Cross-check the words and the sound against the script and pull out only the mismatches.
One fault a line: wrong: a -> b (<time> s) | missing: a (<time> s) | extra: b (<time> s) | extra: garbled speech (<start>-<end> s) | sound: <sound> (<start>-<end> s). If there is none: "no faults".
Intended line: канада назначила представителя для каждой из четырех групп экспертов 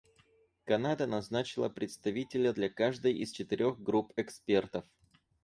no faults